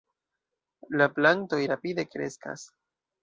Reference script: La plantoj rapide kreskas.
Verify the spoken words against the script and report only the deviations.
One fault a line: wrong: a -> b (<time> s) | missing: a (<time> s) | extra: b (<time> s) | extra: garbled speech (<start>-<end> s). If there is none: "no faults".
no faults